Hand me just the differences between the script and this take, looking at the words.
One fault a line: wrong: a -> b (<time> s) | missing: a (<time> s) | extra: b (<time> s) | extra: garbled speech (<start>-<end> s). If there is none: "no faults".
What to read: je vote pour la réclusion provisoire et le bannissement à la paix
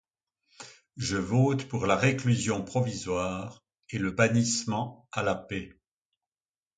no faults